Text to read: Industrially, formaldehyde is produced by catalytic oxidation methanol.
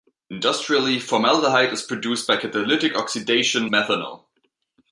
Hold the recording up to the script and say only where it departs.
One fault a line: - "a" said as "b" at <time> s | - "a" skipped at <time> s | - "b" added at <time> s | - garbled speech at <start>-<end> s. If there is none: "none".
none